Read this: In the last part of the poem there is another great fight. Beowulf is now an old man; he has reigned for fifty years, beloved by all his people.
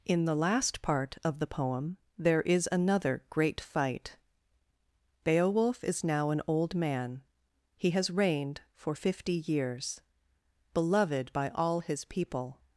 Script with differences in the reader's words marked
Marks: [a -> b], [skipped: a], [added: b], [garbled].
In the last part of the poem there is another great fight. Beowulf is now an old man; he has reigned for fifty years, beloved by all his people.